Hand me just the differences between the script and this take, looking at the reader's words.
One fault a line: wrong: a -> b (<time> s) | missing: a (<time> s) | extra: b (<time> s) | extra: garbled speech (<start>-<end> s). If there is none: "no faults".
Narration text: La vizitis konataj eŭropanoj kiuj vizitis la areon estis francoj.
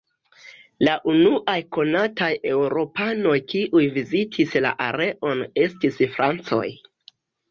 wrong: vizitis -> unuaj (1.1 s)